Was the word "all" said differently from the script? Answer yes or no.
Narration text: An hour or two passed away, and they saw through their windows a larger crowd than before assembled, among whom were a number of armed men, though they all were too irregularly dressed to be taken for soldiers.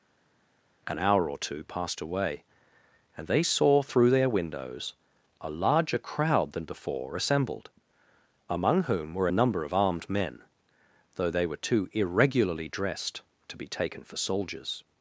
yes